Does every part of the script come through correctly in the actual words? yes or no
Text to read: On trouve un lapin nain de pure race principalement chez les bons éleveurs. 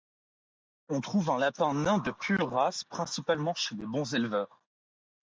yes